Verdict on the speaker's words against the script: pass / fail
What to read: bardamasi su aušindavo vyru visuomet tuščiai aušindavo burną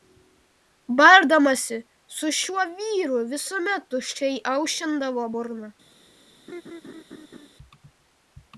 fail